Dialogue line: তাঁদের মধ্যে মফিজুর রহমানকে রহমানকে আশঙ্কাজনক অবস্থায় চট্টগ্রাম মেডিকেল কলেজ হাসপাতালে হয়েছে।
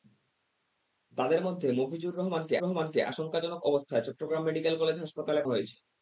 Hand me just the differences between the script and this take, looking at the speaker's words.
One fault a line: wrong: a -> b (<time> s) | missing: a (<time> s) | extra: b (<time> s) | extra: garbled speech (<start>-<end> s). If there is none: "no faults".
no faults